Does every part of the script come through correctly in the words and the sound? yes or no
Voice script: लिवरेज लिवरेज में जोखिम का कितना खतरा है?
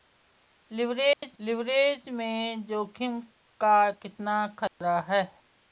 no